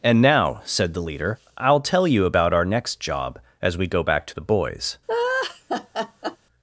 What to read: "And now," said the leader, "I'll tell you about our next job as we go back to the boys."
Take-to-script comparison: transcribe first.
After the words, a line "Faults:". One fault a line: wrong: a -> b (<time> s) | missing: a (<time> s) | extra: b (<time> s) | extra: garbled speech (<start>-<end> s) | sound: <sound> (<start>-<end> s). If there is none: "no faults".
"And now," said the leader, "I'll tell you about our next job as we go back to the boys."
Faults:
sound: laugh (5.1-6.4 s)